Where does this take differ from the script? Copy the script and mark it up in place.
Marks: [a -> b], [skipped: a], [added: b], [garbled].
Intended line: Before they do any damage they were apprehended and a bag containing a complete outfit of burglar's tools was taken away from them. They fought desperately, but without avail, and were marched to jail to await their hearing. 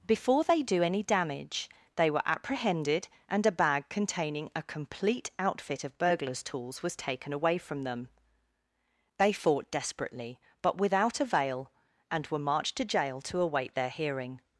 Before they do any damage they were apprehended and a bag containing a complete outfit of burglar's tools was taken away from them. They fought desperately, but without avail, and were marched to jail to await their hearing.